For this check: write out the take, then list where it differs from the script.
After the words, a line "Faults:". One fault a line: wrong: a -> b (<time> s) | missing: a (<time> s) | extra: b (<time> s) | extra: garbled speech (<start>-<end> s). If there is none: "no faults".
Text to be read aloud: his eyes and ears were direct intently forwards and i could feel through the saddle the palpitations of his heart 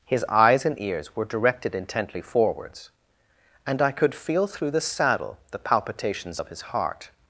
his eyes and ears were directed intently forwards and i could feel through the saddle the palpitations of his heart
Faults:
wrong: direct -> directed (1.3 s)